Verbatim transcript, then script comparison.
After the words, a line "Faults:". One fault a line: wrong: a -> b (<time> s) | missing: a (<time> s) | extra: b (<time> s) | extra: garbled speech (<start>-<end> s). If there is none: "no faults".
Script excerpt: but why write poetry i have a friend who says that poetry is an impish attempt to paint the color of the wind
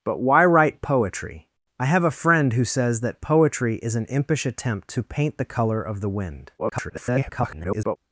but why write poetry i have a friend who says that poetry is an impish attempt to paint the color of the wind [garbled]
Faults:
extra: garbled speech (6.6-8.0 s)